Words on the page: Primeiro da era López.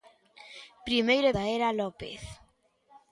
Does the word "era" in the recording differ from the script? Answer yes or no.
no